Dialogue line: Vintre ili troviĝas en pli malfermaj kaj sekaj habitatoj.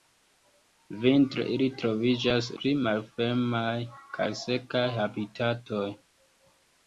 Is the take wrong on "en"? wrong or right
wrong